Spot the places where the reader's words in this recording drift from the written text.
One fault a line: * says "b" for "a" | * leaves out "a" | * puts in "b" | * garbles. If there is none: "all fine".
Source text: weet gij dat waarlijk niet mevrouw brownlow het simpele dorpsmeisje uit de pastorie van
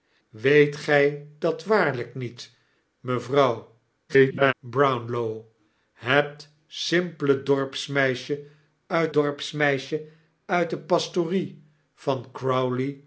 * garbles
* puts in "dorpsmeisje uit"